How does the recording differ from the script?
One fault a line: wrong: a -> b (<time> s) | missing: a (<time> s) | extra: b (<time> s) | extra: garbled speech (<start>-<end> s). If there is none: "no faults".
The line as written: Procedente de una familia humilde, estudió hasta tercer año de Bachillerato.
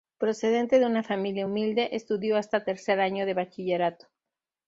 no faults